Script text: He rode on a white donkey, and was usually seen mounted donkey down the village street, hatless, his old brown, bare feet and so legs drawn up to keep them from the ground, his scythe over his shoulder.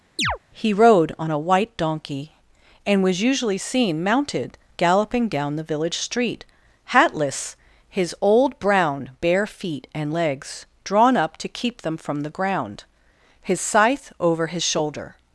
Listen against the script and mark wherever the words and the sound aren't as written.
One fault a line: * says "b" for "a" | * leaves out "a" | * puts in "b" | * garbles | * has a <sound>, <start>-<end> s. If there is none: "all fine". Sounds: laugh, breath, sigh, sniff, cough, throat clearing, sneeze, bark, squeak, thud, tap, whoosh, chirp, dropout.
* has a chirp, 0.2-0.4 s
* says "galloping" for "donkey"
* leaves out "so"